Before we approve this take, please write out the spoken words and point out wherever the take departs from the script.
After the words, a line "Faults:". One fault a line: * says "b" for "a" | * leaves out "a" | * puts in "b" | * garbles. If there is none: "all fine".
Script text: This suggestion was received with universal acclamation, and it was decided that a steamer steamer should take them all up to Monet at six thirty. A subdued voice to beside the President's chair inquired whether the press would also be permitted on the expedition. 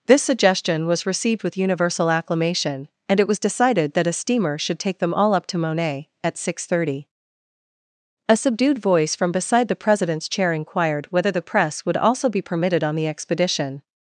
This suggestion was received with universal acclamation, and it was decided that a steamer should take them all up to Monet at six thirty. A subdued voice from beside the President's chair inquired whether the press would also be permitted on the expedition.
Faults:
* leaves out "steamer"
* says "from" for "to"